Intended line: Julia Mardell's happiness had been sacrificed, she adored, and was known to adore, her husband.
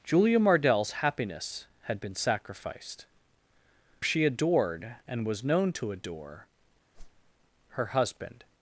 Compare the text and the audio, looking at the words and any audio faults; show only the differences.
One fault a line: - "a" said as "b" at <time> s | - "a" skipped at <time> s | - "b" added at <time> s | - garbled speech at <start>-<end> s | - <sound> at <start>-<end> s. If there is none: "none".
- whoosh at 6.9-7.3 s